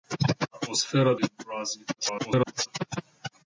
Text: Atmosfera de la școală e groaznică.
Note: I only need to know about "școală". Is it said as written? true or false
false